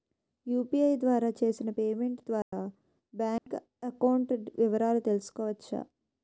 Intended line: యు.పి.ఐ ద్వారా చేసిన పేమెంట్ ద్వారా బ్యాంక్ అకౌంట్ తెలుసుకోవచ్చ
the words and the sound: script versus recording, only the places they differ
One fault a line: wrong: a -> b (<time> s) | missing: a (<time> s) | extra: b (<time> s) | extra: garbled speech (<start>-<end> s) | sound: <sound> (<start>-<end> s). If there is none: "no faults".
sound: dropout (2.4-2.5 s)
sound: dropout (3.4-3.5 s)
extra: వివరాలు (4.6 s)